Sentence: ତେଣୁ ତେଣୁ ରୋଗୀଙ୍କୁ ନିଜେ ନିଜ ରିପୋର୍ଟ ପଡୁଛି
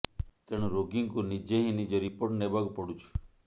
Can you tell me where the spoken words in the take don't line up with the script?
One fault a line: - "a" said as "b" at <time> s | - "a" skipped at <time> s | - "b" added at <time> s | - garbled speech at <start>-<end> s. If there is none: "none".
- "ତେଣୁ" skipped at 0.7 s
- "ହିଁ" added at 1.6 s
- "ନେବାକୁ" added at 2.4 s